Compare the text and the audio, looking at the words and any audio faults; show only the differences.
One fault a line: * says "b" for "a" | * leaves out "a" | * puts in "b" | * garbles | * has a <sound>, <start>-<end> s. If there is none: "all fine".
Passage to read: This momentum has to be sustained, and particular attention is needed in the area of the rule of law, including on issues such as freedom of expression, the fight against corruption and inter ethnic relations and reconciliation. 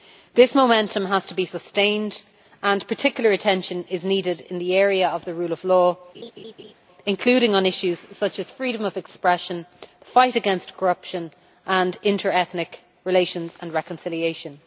* has a laugh, 6.1-6.7 s